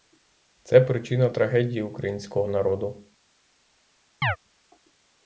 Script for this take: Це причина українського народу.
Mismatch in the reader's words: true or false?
true